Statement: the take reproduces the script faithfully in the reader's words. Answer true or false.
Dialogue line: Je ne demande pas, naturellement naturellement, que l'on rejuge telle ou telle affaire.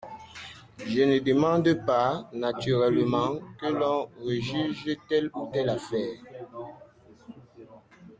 false